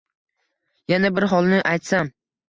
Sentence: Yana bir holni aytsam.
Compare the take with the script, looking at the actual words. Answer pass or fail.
pass